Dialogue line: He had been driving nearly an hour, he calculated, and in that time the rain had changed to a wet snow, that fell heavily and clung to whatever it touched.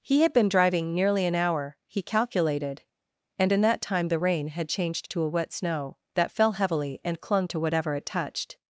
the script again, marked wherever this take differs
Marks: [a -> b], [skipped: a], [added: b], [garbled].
He had been driving nearly an hour, he calculated, and in that time the rain had changed to a wet snow, that fell heavily and clung to whatever it touched.